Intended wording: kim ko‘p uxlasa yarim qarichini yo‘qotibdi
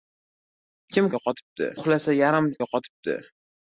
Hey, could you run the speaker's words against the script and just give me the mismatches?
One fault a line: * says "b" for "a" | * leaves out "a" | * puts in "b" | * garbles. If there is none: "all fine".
* says "yo‘qotibdi" for "ko‘p"
* leaves out "qarichini"